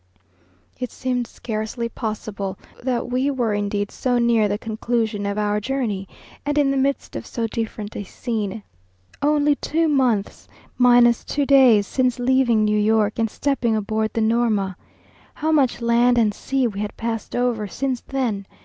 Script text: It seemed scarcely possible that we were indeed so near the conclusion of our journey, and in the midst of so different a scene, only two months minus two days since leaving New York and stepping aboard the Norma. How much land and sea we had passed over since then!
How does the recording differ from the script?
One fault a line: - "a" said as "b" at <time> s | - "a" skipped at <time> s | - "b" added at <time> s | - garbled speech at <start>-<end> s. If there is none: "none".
none